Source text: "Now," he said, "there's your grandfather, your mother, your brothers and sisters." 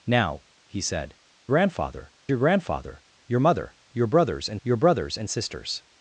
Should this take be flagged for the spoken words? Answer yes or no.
yes